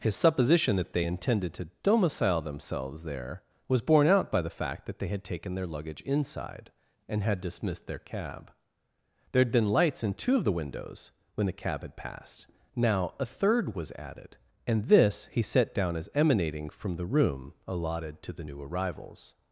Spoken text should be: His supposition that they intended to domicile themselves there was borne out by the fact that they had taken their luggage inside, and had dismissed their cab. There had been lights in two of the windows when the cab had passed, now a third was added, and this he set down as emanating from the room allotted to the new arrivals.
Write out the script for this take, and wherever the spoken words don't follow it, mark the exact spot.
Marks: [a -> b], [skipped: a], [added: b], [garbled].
His supposition that they intended to domicile themselves there was borne out by the fact that they had taken their luggage inside, and had dismissed their cab. There had been lights in two of the windows when the cab had passed, now a third was added, and this he set down as emanating from the room allotted to the new arrivals.